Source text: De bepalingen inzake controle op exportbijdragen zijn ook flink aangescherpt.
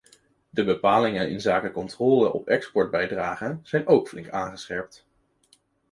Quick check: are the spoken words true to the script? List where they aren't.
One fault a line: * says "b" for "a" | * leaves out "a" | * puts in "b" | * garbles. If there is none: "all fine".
all fine